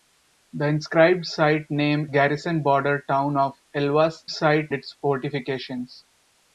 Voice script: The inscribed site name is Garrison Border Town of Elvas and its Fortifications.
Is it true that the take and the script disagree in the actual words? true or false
true